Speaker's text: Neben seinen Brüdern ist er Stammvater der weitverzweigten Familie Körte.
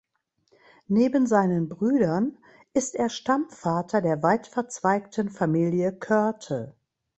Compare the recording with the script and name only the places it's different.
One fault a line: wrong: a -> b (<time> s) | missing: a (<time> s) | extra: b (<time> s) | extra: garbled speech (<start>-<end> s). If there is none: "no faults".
no faults